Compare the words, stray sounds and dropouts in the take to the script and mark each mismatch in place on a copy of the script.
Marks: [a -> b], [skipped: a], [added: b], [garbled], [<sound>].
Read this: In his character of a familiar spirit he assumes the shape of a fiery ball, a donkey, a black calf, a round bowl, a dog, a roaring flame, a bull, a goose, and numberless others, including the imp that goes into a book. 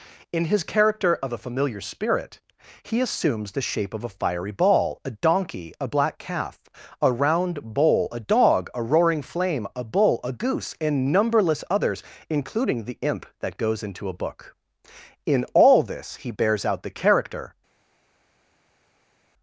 In his character of a familiar spirit he assumes the shape of a fiery ball, a donkey, a black calf, a round bowl, a dog, a roaring flame, a bull, a goose, and numberless others, including the imp that goes into a book. [added: In all this he bears out the character]